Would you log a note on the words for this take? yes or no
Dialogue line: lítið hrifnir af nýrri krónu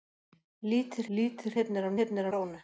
yes